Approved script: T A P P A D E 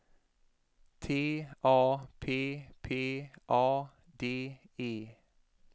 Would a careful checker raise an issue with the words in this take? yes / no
no